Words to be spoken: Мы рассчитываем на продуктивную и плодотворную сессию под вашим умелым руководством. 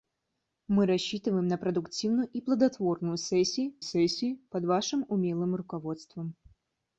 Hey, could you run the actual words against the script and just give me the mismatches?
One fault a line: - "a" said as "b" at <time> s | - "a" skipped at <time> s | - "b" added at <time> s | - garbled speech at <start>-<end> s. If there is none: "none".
- "сессию" added at 3.8 s